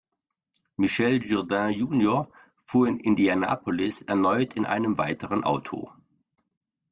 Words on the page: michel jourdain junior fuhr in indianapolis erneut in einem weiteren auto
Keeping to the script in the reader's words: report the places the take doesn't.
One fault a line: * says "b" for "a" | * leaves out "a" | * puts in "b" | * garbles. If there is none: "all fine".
all fine